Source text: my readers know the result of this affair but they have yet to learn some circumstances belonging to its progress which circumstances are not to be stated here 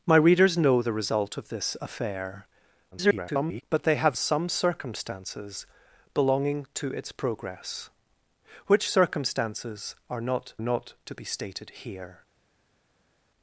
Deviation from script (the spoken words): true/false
true